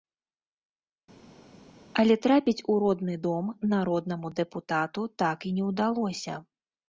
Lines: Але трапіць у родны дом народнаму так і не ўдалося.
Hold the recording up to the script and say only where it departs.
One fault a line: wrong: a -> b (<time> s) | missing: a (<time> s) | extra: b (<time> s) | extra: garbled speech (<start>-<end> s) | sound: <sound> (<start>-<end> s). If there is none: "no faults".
extra: дэпутату (4.4 s)